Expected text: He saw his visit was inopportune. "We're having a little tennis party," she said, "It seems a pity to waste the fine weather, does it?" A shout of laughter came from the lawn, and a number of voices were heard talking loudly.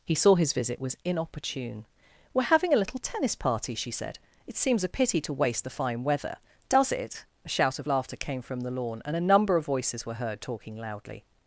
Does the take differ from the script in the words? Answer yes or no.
no